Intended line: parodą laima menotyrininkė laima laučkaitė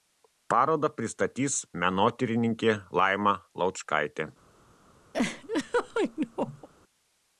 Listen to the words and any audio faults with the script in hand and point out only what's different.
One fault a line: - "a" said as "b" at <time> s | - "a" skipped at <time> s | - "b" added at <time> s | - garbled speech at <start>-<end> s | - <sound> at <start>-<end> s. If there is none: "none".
- "laima" said as "pristatys" at 1.0 s
- laugh at 5.1-6.7 s